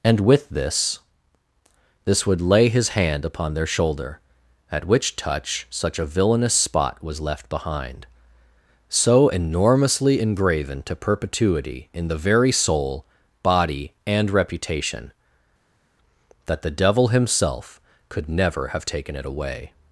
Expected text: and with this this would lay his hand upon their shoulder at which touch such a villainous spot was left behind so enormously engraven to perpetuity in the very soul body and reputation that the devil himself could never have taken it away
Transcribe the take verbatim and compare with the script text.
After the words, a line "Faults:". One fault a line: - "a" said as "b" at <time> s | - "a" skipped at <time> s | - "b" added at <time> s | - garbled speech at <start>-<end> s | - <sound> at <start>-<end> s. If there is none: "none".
and with this this would lay his hand upon their shoulder at which touch such a villainous spot was left behind so enormously engraven to perpetuity in the very soul body and reputation that the devil himself could never have taken it away
Faults:
none